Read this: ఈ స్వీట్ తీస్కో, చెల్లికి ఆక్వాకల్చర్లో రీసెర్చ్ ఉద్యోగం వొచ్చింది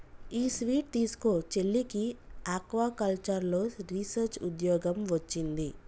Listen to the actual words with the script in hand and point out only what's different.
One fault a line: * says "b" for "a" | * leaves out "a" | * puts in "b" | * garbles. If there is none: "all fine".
all fine